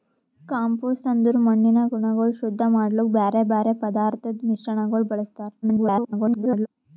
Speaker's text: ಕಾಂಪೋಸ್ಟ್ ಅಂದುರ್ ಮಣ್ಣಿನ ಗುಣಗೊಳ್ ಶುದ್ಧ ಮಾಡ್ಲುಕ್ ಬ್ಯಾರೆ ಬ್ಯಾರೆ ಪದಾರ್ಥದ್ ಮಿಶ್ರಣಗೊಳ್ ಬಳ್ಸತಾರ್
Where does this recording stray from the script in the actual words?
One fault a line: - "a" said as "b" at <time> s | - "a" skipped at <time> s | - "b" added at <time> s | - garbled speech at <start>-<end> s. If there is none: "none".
- garbled speech at 5.6-6.7 s